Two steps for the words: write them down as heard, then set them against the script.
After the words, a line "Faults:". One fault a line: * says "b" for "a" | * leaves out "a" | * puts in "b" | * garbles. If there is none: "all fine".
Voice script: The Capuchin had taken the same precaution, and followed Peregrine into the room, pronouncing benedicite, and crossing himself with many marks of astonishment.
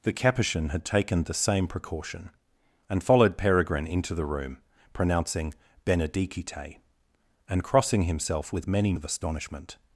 The Capuchin had taken the same precaution, and followed Peregrine into the room, pronouncing benedicite, and crossing himself with many of astonishment.
Faults:
* leaves out "marks"